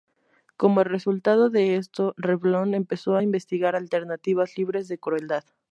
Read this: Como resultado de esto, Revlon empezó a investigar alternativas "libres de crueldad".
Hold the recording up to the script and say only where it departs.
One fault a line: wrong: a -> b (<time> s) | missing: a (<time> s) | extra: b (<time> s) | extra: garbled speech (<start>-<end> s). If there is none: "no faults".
no faults